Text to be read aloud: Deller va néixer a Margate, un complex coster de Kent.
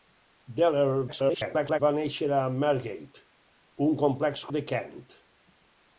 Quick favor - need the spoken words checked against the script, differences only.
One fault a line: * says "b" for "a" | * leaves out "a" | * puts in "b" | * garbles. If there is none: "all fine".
* garbles
* leaves out "coster"